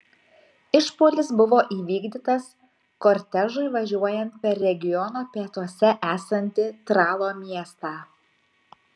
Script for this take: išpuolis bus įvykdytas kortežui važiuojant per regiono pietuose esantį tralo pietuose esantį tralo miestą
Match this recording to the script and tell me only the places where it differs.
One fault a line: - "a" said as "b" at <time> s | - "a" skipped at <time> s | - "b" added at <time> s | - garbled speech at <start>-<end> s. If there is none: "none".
- "bus" said as "buvo" at 1.4 s
- "pietuose esantį tralo" skipped at 7.3 s